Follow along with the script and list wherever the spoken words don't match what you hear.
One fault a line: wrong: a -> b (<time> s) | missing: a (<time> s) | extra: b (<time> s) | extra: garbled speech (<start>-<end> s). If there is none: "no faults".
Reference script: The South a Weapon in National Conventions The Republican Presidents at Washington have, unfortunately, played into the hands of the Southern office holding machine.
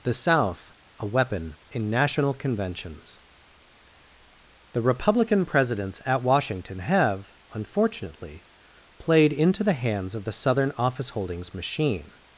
wrong: holding -> holdings (11.1 s)